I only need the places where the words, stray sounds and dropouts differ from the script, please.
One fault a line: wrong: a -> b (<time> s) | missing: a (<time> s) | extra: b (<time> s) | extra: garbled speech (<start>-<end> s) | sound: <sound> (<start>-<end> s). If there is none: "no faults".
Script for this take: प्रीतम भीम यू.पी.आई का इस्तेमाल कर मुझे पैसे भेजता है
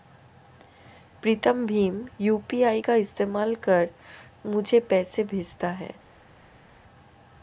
no faults